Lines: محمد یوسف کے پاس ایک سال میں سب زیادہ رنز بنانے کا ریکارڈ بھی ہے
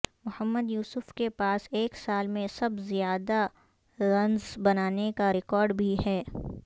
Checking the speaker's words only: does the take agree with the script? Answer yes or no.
yes